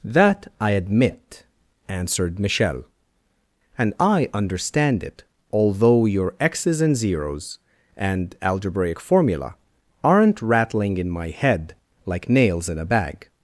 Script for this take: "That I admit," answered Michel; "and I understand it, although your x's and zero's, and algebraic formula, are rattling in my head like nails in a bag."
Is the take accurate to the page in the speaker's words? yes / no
no